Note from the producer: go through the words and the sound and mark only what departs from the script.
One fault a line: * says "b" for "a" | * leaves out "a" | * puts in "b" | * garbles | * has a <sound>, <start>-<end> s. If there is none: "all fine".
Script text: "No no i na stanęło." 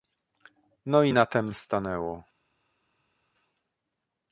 * leaves out "no"
* puts in "tem"